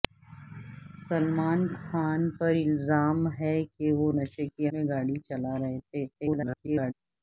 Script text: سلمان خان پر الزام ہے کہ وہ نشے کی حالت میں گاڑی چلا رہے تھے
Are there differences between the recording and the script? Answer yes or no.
yes